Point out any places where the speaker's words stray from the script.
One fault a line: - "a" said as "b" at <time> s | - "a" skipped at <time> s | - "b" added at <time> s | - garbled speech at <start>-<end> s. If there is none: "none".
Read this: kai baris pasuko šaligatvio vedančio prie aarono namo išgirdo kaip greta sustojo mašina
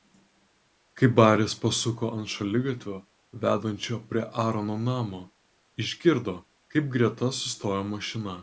- "ant" added at 2.2 s